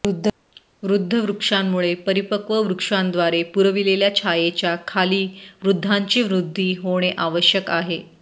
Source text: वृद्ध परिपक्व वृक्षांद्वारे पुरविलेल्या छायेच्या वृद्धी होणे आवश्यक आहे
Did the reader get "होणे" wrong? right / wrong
right